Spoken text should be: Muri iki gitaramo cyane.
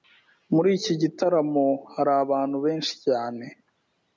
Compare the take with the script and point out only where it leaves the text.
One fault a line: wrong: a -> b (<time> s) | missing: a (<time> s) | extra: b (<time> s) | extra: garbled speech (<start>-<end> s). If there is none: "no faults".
extra: hari abantu benshi (1.9 s)